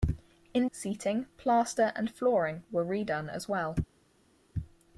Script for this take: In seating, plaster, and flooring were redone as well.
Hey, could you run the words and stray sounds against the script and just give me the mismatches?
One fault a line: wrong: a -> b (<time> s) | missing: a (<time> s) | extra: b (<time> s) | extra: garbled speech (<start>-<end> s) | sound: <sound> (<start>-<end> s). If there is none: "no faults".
no faults